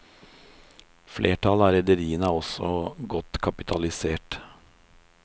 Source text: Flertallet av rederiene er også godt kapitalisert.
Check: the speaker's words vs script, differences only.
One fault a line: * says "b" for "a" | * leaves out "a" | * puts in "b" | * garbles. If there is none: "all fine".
all fine